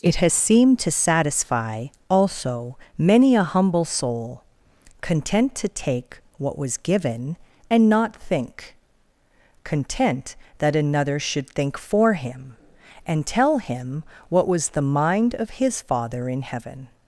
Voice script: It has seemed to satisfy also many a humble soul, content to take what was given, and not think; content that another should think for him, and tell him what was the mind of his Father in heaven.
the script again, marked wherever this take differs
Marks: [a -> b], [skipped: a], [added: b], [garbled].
It has seemed to satisfy also many a humble soul, content to take what was given, and not think; content that another should think for him, and tell him what was the mind of his Father in heaven.